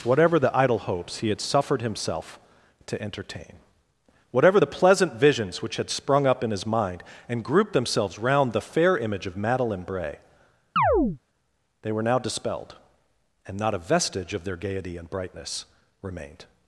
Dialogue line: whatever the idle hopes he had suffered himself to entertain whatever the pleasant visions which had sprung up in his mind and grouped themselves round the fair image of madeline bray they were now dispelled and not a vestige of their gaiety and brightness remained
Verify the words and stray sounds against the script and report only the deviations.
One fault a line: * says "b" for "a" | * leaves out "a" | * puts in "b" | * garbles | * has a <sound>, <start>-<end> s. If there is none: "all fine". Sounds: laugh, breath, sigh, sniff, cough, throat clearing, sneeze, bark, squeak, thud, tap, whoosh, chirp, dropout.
* has a chirp, 10.8-11.2 s